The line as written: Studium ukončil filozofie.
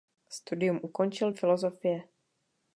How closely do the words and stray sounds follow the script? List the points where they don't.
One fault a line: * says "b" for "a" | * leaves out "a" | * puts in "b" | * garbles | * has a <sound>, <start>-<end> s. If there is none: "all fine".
all fine